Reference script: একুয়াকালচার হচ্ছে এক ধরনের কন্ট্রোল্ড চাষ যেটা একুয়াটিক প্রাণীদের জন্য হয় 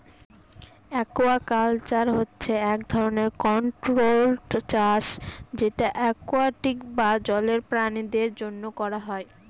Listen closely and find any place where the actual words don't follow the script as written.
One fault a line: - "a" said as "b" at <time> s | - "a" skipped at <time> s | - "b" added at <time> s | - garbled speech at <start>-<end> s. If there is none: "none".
- "বা জলের" added at 7.0 s
- "করা" added at 8.8 s